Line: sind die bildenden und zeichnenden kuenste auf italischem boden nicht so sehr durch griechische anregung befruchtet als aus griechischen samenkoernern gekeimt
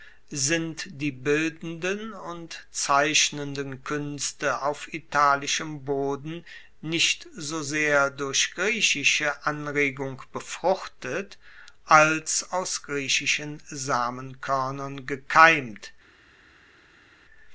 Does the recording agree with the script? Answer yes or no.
yes